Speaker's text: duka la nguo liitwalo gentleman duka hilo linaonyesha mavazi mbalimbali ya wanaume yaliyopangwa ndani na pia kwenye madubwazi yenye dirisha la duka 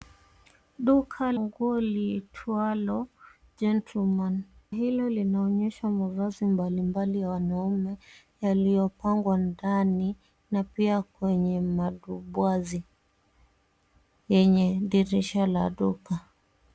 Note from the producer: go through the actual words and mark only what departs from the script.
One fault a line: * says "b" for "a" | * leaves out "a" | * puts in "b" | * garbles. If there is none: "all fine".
* leaves out "la"
* leaves out "duka"